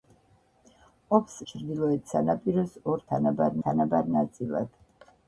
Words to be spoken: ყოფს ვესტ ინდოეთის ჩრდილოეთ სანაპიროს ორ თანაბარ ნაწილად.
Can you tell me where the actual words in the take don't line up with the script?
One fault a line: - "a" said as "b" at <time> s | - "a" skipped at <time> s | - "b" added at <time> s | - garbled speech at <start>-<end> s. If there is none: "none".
- "ვესტ ინდოეთის" skipped at 1.4 s
- "თანაბარ" added at 3.7 s